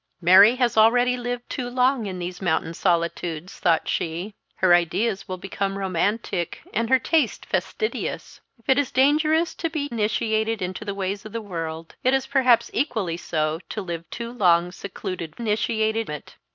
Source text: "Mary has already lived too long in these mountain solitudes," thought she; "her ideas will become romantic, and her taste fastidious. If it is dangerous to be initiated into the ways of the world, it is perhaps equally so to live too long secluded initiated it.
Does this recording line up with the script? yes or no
yes